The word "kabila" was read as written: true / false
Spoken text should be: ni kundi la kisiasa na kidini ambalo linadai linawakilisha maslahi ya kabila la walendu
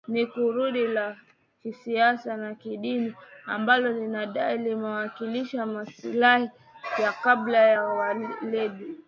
true